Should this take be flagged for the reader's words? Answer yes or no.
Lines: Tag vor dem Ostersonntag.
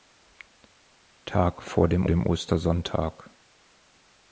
yes